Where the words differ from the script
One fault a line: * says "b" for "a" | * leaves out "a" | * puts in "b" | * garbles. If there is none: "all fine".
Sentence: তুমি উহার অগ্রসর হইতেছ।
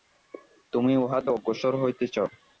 all fine